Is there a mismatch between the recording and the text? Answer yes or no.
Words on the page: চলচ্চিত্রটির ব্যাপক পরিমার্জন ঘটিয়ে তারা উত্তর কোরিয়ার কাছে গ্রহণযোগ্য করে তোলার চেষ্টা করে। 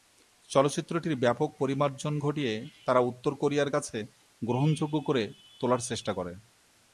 no